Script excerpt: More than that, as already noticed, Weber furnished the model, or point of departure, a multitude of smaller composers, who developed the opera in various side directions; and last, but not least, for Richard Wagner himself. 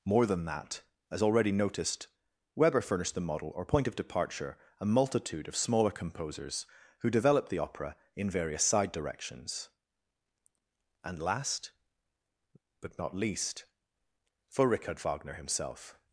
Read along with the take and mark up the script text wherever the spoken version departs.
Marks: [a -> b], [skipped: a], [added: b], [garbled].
More than that, as already noticed, Weber furnished the model, or point of departure, a multitude of smaller composers, who developed the opera in various side directions; and last, but not least, for Richard Wagner himself.